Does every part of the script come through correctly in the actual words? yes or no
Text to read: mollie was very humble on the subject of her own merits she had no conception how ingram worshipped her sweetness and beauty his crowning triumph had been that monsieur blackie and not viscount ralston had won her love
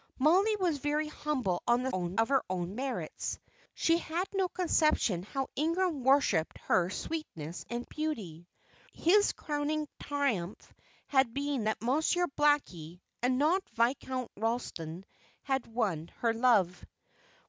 no